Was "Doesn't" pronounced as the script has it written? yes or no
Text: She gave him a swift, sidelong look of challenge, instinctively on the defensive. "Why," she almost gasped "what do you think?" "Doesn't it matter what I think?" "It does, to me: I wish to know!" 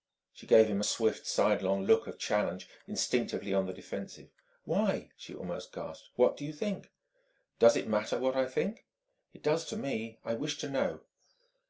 no